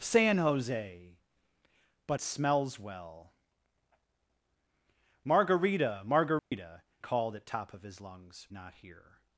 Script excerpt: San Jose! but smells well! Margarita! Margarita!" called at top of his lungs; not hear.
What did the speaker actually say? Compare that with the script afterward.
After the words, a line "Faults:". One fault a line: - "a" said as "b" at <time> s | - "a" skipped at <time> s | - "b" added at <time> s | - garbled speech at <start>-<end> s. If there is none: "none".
San Jose! but smells well! Margarita! Margarita!" called at top of his lungs; not hear.
Faults:
none